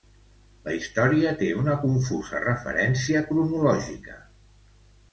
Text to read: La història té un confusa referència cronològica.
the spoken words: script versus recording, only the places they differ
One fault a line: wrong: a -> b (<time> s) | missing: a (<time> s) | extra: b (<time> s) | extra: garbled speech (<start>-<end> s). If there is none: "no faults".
wrong: un -> una (1.6 s)